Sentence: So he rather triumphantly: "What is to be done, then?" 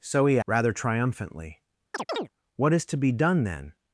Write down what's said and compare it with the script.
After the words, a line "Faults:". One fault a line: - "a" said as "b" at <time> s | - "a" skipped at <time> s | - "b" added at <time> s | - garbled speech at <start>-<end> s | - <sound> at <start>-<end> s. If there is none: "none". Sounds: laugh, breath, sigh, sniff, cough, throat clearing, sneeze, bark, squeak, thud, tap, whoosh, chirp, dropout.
So he rather triumphantly: "What is to be done, then?"
Faults:
- chirp at 1.9-2.3 s